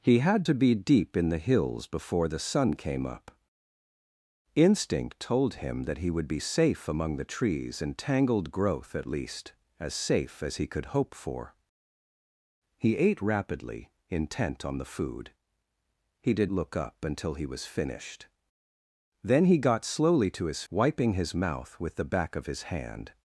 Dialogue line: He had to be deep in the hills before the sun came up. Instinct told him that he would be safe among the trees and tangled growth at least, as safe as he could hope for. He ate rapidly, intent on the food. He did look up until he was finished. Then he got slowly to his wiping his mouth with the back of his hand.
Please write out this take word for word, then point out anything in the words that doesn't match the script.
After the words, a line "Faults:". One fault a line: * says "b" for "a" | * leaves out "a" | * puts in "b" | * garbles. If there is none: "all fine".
He had to be deep in the hills before the sun came up. Instinct told him that he would be safe among the trees and tangled growth at least, as safe as he could hope for. He ate rapidly, intent on the food. He did look up until he was finished. Then he got slowly to his wiping his mouth with the back of his hand.
Faults:
all fine